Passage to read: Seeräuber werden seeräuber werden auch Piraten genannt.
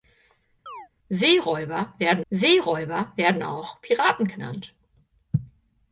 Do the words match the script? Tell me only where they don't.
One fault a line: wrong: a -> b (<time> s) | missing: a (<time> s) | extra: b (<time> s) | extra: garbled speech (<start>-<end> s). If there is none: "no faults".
no faults